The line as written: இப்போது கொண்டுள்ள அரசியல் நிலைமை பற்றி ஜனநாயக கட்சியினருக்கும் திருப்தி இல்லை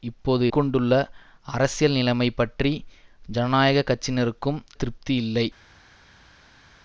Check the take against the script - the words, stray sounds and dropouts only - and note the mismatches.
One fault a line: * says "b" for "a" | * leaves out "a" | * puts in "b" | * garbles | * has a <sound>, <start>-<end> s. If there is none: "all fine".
all fine